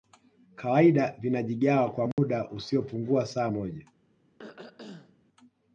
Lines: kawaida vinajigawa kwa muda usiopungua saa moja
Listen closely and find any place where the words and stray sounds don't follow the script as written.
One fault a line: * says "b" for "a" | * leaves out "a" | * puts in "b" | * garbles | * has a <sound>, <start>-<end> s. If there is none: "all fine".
* has a dropout, 2.1-2.2 s
* has a throat clearing, 4.4-5.2 s